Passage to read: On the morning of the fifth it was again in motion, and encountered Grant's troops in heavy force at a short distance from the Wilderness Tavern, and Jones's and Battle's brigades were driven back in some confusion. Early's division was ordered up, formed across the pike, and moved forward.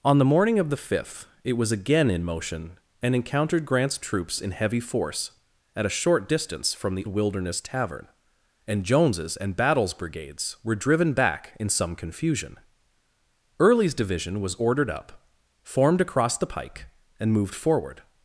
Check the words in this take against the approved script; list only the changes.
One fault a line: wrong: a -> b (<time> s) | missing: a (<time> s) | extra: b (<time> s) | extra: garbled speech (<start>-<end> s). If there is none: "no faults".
no faults